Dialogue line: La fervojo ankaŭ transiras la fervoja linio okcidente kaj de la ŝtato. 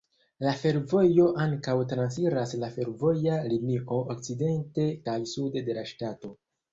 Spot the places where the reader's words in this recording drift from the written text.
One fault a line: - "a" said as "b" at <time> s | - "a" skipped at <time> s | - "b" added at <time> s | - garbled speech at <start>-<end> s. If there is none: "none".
- "sude" added at 5.3 s